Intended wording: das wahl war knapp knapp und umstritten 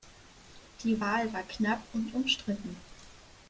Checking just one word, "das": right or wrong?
wrong